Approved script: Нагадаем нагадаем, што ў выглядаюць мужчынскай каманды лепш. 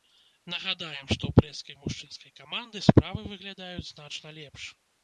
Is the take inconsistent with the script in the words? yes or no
yes